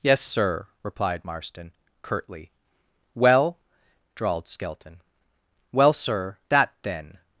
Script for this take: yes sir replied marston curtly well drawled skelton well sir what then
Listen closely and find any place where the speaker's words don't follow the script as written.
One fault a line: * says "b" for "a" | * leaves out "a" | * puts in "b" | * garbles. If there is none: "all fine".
* says "that" for "what"